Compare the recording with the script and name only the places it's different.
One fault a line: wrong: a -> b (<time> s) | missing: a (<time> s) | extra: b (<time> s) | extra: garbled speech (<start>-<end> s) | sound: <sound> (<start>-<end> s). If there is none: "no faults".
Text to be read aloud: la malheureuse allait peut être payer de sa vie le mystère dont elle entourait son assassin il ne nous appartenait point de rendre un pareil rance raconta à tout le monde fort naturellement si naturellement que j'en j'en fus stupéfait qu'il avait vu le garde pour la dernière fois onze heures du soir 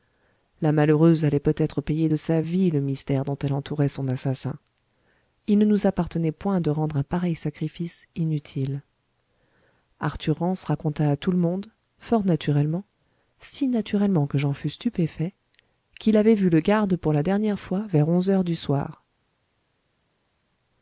extra: sacrifice inutile arthur (7.4 s)
missing: j'en (14.5 s)
extra: vers (17.9 s)